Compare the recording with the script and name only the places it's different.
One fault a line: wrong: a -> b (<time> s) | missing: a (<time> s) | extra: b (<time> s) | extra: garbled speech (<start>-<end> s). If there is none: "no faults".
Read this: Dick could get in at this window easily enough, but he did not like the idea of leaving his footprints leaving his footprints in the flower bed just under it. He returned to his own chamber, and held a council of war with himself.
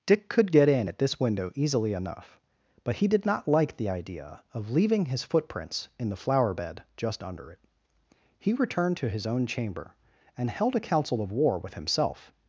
missing: leaving his footprints (5.9 s)